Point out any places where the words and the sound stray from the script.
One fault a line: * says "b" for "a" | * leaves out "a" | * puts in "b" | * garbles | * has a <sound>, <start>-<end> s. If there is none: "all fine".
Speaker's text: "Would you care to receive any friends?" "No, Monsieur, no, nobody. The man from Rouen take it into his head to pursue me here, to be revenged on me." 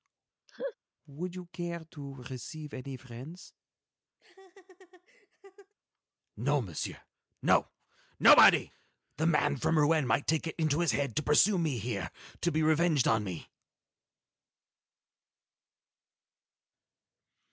* has a laugh, 0.5-0.7 s
* has a laugh, 4.2-5.7 s
* puts in "might"